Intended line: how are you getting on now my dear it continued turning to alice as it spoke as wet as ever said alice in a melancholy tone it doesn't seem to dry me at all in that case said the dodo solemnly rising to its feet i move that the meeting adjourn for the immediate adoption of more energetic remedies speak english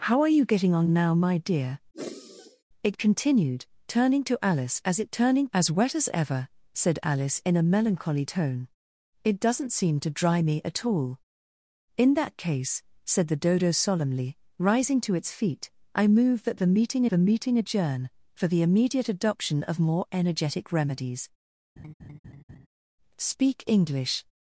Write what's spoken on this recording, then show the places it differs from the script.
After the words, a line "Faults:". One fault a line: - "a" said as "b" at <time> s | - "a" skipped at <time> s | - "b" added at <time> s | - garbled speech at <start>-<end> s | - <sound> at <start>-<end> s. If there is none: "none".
how are you getting on now my dear it continued turning to alice as it turning as wet as ever said alice in a melancholy tone it doesn't seem to dry me at all in that case said the dodo solemnly rising to its feet i move that the meeting the meeting adjourn for the immediate adoption of more energetic remedies speak english
Faults:
- sigh at 1.9-2.6 s
- "spoke" said as "turning" at 5.1 s
- "the meeting" added at 17.1 s
- laugh at 21.8-22.7 s